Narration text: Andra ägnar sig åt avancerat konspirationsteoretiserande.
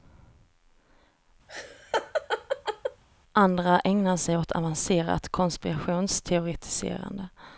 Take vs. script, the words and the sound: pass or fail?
fail